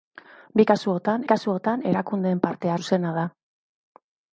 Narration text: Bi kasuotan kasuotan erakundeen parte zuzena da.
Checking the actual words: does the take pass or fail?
pass